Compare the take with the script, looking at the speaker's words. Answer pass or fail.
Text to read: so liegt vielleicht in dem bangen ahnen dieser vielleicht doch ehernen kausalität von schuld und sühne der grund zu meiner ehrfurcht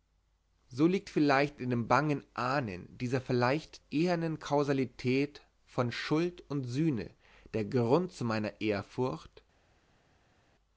fail